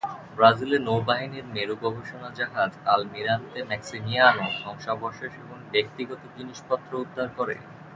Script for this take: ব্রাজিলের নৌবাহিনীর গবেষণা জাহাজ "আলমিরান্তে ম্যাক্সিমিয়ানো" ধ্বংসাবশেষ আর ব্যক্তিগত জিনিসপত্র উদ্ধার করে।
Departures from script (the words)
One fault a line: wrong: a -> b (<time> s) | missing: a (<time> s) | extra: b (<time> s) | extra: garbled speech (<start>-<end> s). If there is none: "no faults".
extra: মেরু (1.5 s)
wrong: আর -> এবং (5.4 s)